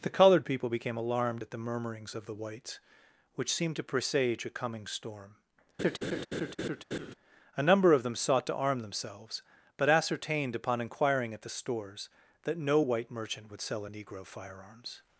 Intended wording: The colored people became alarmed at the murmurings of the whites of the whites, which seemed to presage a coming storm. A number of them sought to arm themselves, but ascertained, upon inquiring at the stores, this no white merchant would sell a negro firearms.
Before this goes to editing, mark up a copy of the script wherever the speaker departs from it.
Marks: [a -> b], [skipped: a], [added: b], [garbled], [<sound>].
The colored people became alarmed at the murmurings of the whites [skipped: of the whites,] which seemed to presage a coming storm. [laugh] A number of them sought to arm themselves, but ascertained, upon inquiring at the stores, [this -> that] no white merchant would sell a negro firearms.